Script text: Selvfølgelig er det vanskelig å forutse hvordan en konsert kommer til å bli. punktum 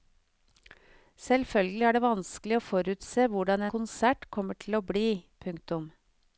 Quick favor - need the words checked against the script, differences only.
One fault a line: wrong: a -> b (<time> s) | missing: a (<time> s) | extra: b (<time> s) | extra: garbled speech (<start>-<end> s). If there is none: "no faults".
missing: en (3.7 s)